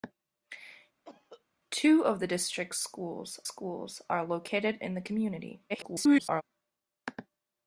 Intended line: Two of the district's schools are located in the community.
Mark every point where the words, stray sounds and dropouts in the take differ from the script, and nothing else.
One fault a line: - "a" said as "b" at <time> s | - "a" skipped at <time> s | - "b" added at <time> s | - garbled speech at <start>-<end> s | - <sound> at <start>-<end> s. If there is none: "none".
- cough at 1.1-1.4 s
- "schools" added at 3.4 s
- garbled speech at 5.7-6.4 s